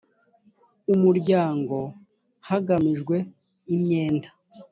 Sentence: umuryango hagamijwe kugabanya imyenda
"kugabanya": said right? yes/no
no